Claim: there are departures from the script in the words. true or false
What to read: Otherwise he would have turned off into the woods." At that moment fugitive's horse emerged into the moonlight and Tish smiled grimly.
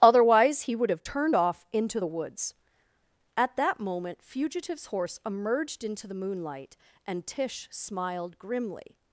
false